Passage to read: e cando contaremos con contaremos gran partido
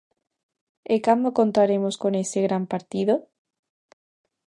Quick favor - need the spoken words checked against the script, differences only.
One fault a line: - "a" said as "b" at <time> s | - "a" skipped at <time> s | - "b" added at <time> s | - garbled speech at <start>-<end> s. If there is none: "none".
- "contaremos" said as "ese" at 2.2 s